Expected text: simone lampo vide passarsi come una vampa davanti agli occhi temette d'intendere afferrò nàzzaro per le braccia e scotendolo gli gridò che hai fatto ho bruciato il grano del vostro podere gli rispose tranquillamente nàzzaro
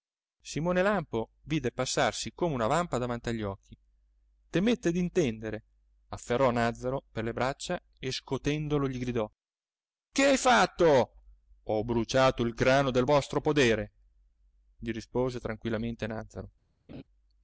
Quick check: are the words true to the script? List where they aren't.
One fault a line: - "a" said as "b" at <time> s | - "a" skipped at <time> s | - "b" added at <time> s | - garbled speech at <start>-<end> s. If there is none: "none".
none